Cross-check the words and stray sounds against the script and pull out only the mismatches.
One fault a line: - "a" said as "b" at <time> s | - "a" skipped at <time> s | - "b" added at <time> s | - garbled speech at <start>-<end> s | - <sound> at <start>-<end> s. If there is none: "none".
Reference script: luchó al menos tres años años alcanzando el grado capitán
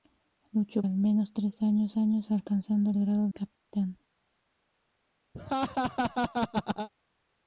- dropout at 3.6-3.7 s
- laugh at 5.3-6.9 s